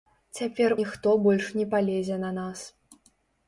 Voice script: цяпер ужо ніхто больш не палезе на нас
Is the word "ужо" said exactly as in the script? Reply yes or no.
no